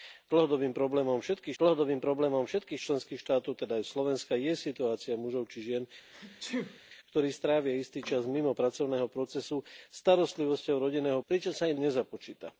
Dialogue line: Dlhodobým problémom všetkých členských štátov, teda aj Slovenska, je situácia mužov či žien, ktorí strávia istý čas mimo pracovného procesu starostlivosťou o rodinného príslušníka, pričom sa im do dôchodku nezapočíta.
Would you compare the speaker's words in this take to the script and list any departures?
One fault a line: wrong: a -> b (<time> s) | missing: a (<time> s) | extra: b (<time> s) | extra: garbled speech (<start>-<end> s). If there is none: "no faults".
extra: dlhodobým problémom všetkých (1.6 s)
missing: príslušníka (11.2 s)
missing: do dôchodku (11.8 s)